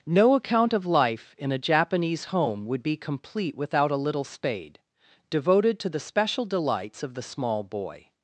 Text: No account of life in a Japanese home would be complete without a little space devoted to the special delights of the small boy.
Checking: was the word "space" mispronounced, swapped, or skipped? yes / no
yes